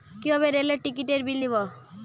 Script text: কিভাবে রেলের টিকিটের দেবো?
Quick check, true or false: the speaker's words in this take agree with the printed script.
false